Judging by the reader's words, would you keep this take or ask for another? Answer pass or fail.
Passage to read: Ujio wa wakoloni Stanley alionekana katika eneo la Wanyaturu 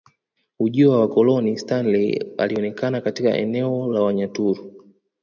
pass